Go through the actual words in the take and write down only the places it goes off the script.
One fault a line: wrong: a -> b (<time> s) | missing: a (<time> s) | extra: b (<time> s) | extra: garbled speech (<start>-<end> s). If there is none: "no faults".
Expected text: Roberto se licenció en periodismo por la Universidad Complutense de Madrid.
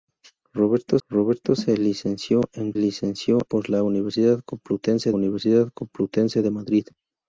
extra: roberto (1.1 s)
wrong: periodismo -> licenció (2.7 s)
extra: Universidad Complutense (5.1 s)